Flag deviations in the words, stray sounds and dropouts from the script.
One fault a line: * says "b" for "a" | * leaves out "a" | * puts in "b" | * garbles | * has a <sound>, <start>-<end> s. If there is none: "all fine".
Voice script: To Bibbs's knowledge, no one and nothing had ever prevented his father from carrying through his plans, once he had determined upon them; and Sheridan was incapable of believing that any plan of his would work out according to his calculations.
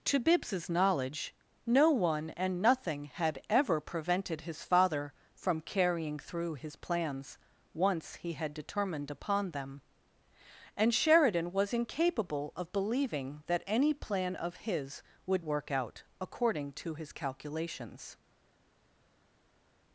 all fine